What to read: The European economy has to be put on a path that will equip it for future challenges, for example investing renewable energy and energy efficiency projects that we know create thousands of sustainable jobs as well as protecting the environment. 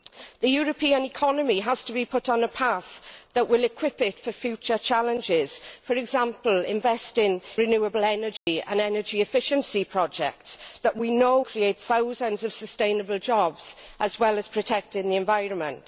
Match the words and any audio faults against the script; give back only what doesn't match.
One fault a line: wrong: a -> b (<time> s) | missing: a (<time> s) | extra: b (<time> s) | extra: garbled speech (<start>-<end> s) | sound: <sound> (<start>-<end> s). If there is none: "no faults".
sound: dropout (8.4-8.5 s)